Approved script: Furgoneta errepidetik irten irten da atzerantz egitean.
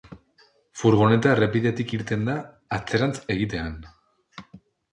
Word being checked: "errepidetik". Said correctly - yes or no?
yes